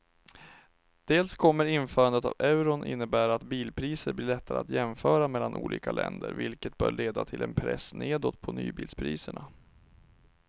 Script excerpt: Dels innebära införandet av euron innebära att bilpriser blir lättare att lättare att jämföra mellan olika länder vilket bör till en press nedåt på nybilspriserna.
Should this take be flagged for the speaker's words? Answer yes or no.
yes